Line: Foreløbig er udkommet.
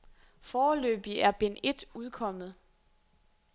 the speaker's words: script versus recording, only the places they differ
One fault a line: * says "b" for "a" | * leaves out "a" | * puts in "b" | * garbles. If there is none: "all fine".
* puts in "bind et"